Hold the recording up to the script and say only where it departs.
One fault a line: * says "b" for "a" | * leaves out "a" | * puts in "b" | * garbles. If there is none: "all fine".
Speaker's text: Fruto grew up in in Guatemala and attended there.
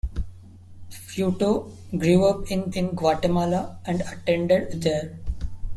all fine